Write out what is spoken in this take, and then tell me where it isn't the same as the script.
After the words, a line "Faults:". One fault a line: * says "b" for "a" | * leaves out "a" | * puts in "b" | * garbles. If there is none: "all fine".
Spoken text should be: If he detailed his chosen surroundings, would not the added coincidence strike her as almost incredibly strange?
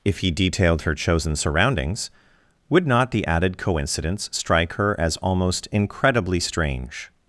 If he detailed her chosen surroundings, would not the added coincidence strike her as almost incredibly strange?
Faults:
* says "her" for "his"